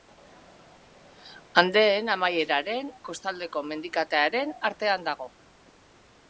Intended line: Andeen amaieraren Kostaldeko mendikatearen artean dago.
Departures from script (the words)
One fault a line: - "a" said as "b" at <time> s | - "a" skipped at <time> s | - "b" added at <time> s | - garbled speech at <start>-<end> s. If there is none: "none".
none